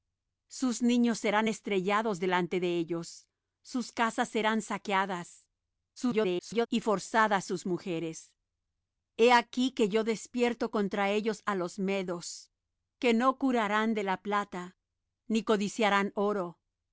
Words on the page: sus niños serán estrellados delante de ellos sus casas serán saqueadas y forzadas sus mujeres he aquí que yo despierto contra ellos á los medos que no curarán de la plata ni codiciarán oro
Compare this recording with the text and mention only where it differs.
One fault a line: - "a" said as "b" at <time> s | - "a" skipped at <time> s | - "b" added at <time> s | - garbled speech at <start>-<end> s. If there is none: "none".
- garbled speech at 6.0-6.7 s